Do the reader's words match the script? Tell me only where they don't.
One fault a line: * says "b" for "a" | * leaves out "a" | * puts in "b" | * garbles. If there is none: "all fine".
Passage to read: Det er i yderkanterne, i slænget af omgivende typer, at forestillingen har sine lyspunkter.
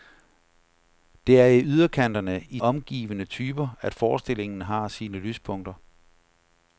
* leaves out "slænget af"